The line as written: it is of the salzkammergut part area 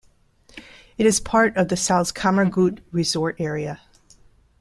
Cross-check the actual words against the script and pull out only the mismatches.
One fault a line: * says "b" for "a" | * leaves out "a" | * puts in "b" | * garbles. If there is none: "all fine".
* puts in "part"
* says "resort" for "part"